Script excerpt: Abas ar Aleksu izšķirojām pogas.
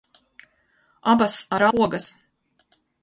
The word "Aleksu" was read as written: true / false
false